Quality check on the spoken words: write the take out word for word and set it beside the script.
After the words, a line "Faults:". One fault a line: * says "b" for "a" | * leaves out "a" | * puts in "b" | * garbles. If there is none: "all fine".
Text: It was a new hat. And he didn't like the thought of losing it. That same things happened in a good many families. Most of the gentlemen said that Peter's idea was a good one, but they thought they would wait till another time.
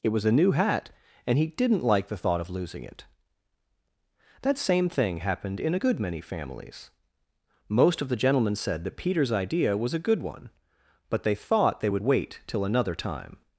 It was a new hat. And he didn't like the thought of losing it. That same thing happened in a good many families. Most of the gentlemen said that Peter's idea was a good one, but they thought they would wait till another time.
Faults:
* says "thing" for "things"